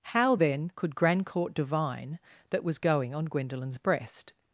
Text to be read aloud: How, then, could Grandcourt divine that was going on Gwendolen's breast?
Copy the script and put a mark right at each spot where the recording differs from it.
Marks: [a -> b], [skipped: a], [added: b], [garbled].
How, then, could Grandcourt divine that was going on Gwendolen's breast?